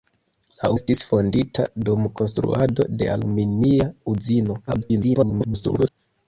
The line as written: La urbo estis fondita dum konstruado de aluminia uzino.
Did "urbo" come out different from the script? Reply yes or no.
yes